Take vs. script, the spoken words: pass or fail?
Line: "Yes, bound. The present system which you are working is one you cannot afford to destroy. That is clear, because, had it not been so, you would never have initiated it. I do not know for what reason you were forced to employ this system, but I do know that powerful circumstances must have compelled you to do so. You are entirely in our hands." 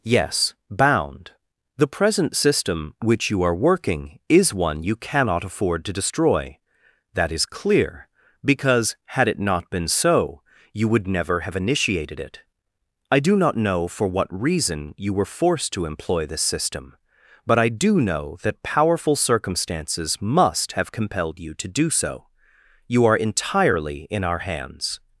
pass